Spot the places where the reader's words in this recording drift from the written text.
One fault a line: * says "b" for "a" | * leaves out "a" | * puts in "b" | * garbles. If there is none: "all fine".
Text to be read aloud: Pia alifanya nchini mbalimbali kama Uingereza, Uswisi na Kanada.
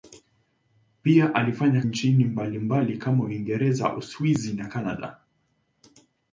all fine